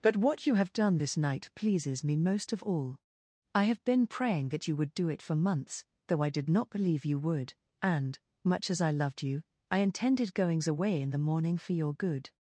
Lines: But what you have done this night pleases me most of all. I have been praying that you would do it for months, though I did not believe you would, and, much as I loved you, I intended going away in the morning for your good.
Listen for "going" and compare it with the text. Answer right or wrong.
wrong